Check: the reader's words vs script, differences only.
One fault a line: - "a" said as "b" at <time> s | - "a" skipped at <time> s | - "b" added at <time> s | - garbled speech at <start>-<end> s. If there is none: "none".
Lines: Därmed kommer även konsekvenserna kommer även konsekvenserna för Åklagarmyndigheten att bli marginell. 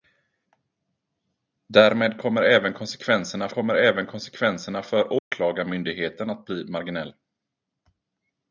none